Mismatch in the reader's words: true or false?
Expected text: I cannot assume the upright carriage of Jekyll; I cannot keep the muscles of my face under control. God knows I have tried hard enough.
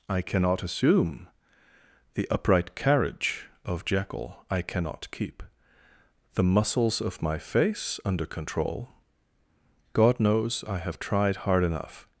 false